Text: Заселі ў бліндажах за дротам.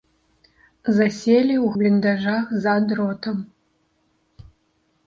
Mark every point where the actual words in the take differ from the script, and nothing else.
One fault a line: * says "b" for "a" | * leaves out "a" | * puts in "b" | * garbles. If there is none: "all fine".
all fine